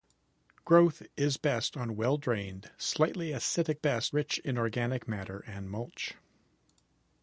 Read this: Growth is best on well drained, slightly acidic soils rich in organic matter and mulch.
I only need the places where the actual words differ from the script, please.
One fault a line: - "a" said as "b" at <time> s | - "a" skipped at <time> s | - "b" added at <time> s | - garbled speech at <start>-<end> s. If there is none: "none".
- "soils" said as "best" at 3.7 s